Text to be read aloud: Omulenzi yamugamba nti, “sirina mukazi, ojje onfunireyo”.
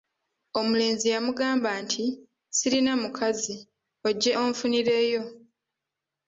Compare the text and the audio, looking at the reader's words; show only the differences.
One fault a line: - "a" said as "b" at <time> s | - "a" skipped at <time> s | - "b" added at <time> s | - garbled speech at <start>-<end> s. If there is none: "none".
none